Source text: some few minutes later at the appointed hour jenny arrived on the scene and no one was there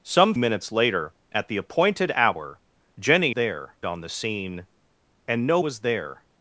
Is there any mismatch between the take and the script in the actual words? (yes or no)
yes